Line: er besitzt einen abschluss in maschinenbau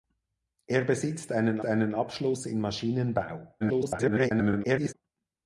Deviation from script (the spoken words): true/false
true